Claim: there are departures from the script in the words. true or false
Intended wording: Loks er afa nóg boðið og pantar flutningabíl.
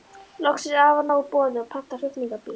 false